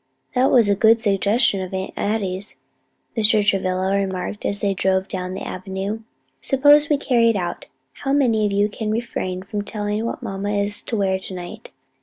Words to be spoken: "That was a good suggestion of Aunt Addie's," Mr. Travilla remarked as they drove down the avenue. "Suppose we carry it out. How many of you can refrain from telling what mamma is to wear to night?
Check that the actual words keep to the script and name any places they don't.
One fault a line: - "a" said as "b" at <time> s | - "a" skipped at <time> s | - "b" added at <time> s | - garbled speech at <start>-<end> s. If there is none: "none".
none